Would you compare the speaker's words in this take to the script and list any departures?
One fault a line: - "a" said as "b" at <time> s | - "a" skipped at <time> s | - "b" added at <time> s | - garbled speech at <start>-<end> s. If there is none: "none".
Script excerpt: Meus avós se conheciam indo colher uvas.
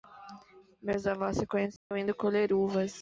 none